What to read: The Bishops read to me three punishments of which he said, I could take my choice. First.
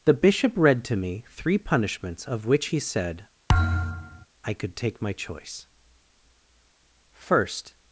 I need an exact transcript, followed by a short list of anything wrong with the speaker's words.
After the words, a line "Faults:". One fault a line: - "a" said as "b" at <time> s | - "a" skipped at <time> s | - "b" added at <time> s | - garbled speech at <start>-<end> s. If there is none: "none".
The Bishop read to me three punishments of which he said, I could take my choice. First.
Faults:
- "Bishops" said as "Bishop" at 0.1 s